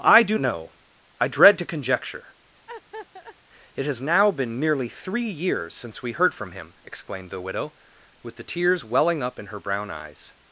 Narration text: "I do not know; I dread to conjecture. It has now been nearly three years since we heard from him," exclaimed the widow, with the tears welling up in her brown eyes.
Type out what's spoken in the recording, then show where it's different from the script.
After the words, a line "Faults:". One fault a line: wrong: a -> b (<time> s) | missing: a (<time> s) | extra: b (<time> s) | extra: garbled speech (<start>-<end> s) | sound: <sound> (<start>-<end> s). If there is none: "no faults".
"I do know; I dread to conjecture. It has now been nearly three years since we heard from him," exclaimed the widow, with the tears welling up in her brown eyes.
Faults:
missing: not (0.4 s)
sound: laugh (2.7-3.4 s)